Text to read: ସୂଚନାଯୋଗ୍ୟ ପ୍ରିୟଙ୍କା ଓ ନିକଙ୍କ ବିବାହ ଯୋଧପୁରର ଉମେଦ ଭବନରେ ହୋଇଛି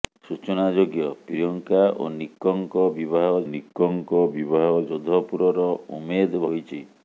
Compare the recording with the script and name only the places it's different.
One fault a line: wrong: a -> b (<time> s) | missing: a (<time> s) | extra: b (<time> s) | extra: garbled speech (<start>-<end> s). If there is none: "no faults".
extra: ନିକଙ୍କ ବିବାହ (3.5 s)
missing: ଭବନରେ (6.5 s)